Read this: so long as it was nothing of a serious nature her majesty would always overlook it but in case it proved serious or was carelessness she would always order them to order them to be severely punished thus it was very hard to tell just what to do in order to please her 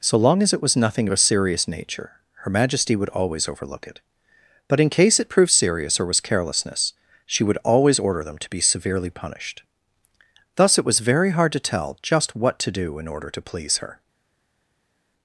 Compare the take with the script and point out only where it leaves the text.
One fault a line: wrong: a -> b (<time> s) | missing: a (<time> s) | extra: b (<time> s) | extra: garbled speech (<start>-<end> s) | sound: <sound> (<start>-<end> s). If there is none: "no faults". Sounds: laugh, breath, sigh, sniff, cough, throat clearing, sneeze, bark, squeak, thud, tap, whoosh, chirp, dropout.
missing: order them to (8.5 s)